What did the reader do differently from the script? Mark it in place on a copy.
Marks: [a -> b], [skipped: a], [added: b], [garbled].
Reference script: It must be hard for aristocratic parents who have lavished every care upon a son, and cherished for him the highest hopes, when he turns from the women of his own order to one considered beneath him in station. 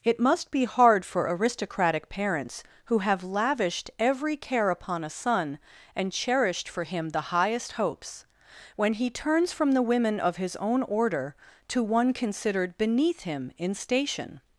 It must be hard for aristocratic parents who have lavished every care upon a son, and cherished for him the highest hopes, when he turns from the women of his own order to one considered beneath him in station.